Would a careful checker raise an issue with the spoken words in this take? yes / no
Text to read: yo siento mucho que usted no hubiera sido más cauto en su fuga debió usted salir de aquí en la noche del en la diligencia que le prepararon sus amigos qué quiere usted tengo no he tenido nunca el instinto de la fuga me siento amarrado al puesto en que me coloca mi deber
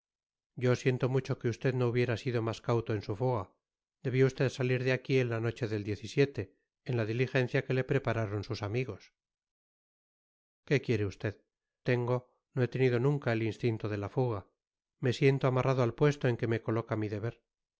no